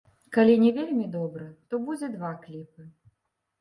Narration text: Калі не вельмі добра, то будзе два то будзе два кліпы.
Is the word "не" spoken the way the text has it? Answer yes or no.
yes